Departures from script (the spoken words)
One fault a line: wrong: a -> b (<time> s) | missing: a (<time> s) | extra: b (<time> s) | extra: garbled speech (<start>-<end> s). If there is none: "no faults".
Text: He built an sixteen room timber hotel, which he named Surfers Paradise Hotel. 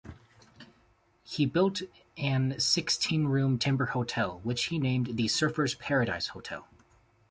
extra: the (5.1 s)